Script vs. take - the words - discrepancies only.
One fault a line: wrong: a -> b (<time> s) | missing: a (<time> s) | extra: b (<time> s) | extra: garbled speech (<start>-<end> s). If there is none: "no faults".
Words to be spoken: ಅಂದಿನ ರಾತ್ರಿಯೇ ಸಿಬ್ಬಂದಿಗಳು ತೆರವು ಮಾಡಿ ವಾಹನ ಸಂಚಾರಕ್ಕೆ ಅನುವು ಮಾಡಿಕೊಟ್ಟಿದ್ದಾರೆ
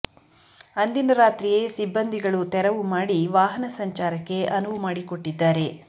no faults